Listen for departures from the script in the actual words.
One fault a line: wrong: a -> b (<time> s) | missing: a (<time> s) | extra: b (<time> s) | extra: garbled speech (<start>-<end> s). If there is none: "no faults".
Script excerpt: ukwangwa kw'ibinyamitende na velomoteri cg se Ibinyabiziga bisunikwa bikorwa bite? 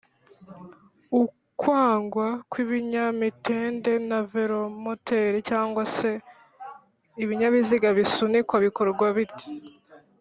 no faults